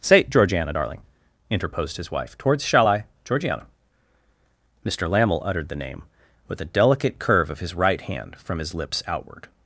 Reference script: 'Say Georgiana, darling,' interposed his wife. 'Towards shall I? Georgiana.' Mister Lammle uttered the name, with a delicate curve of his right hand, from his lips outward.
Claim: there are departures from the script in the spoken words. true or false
false